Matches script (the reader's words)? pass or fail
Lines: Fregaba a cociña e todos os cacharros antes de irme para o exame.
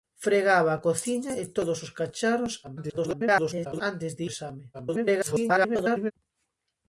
fail